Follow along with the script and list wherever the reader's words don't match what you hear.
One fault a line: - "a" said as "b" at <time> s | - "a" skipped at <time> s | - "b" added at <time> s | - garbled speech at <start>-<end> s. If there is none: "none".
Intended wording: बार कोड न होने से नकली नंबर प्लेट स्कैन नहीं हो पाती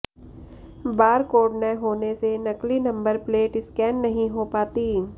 none